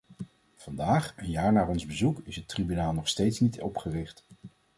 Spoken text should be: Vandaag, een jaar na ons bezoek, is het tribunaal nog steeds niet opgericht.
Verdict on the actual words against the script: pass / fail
pass